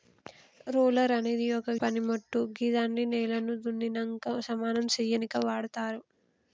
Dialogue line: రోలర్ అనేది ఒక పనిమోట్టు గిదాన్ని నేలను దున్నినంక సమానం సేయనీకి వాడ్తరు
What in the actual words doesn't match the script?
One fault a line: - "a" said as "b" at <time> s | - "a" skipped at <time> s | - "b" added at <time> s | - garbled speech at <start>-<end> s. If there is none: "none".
none